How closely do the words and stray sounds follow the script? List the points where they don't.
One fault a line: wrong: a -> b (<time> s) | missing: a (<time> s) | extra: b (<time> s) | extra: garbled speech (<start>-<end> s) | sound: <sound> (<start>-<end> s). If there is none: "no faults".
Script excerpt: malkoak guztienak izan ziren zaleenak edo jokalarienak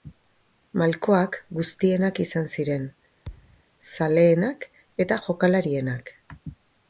sound: thud (3.3-3.6 s)
wrong: edo -> eta (5.1 s)